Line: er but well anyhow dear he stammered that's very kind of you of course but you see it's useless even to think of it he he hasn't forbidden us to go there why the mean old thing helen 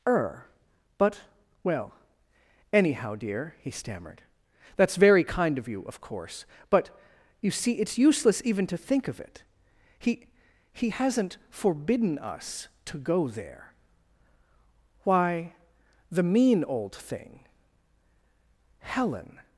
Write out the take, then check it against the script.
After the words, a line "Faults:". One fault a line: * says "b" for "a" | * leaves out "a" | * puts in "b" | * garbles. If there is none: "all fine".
er but well anyhow dear he stammered that's very kind of you of course but you see it's useless even to think of it he he hasn't forbidden us to go there why the mean old thing helen
Faults:
all fine